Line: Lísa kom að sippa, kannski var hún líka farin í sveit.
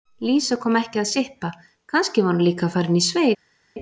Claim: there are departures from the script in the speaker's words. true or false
true